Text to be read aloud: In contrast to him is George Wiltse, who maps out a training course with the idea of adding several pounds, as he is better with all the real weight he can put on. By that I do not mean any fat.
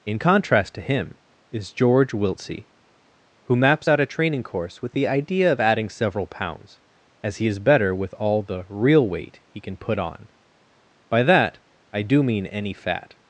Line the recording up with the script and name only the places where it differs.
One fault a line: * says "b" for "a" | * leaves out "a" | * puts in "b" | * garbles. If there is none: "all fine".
* leaves out "not"